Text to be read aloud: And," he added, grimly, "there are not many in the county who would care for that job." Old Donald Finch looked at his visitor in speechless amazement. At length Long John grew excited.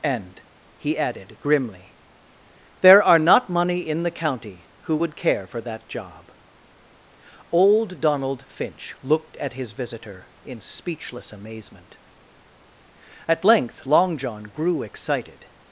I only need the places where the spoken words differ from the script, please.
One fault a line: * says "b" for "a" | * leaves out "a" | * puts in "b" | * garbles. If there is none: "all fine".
* says "money" for "many"